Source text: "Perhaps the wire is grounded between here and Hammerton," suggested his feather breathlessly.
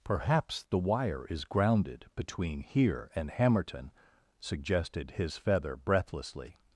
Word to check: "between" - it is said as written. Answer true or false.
true